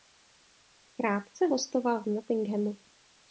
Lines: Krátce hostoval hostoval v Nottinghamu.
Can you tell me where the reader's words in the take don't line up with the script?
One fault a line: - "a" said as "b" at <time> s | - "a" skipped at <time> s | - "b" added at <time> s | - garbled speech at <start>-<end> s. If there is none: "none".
- "hostoval" skipped at 2.0 s